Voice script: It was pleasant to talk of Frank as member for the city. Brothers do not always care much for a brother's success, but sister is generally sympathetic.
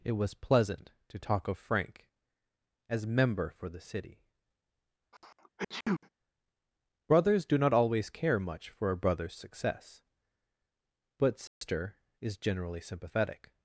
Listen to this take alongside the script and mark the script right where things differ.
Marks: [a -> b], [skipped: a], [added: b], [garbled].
It was pleasant to talk of Frank as member for the city. Brothers do not always care much for a brother's success, but sister is generally sympathetic.